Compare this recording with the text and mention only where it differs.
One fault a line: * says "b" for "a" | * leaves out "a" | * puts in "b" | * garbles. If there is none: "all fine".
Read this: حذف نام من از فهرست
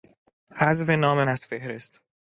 * leaves out "من"